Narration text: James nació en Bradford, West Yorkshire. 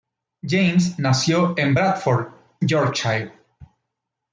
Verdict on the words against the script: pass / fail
fail